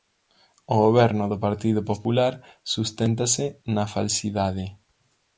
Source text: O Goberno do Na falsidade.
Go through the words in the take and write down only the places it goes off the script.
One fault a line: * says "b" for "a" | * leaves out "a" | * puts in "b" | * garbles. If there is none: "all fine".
* puts in "Partido Popular susténtase"